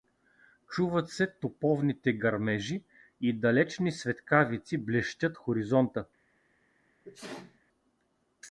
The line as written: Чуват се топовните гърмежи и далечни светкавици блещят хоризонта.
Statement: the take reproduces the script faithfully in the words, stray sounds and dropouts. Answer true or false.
false